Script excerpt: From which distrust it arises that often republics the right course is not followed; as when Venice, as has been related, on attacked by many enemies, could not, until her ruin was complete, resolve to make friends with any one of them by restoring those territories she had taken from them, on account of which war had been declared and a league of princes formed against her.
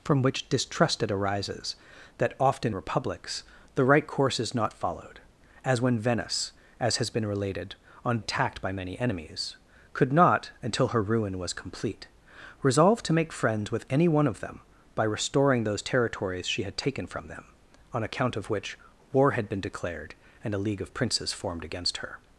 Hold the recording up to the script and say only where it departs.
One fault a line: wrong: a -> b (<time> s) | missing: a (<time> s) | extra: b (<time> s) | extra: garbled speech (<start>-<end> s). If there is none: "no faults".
no faults